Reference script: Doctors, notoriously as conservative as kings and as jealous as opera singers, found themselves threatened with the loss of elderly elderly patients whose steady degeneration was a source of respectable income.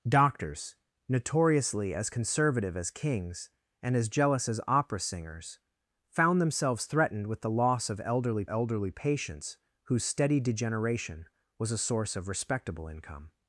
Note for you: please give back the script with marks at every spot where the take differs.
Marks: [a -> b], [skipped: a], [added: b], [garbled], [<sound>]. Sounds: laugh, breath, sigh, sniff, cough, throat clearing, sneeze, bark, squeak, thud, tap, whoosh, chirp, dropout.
Doctors, notoriously as conservative as kings and as jealous as opera singers, found themselves threatened with the loss of elderly elderly patients whose steady degeneration was a source of respectable income.